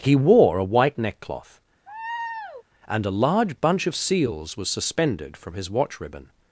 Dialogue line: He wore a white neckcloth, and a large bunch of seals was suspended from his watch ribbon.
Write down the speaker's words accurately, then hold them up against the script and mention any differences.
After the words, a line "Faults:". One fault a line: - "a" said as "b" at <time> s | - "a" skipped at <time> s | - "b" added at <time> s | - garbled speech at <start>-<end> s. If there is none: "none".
He wore a white neckcloth, and a large bunch of seals was suspended from his watch ribbon.
Faults:
none